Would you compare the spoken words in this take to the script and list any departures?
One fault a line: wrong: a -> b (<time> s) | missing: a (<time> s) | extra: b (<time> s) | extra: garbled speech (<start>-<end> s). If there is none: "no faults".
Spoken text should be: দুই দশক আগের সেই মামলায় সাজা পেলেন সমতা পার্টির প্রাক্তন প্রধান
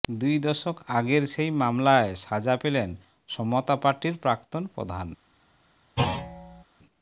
no faults